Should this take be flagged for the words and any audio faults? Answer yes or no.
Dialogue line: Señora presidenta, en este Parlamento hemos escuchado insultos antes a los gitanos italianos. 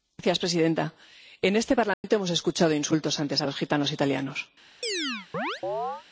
yes